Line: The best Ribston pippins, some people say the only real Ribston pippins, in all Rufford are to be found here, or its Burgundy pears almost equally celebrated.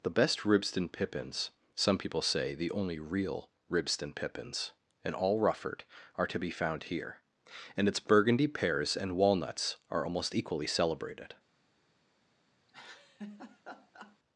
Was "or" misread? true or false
true